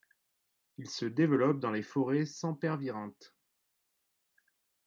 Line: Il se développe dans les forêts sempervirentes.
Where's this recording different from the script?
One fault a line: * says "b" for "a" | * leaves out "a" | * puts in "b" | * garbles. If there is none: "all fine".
all fine